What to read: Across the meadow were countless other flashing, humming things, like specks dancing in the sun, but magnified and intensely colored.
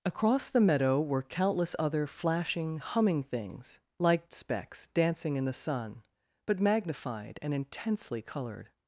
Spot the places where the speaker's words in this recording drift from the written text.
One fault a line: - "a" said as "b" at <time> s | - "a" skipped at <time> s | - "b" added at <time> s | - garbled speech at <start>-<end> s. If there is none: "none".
none